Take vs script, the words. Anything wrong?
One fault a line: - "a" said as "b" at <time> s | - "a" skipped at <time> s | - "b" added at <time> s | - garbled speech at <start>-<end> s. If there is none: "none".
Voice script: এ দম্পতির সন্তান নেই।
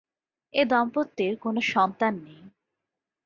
- "কোন" added at 1.4 s